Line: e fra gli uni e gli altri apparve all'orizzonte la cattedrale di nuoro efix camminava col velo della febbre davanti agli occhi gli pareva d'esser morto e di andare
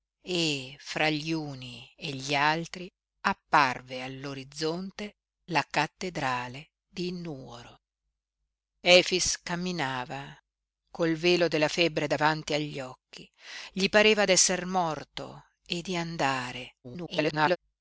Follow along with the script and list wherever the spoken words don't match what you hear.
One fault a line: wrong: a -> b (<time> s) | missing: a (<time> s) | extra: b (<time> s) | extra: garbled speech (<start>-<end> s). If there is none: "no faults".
extra: garbled speech (16.8-17.6 s)